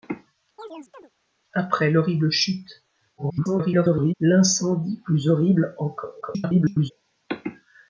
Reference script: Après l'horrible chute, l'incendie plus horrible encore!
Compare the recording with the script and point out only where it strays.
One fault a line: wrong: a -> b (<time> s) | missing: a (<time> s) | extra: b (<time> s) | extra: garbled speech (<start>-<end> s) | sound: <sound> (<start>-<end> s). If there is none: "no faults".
sound: chirp (0.6-1.1 s)
extra: garbled speech (3.2-4.1 s)
extra: garbled speech (6.2-6.9 s)